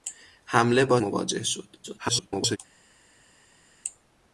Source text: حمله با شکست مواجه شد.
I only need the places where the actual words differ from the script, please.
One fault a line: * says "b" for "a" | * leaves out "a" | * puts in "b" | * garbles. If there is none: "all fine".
* leaves out "شکست"
* garbles